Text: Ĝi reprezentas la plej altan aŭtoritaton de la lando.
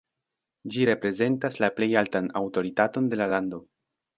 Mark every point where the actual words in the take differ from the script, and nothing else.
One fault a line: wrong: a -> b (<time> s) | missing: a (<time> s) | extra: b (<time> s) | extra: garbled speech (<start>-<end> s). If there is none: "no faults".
no faults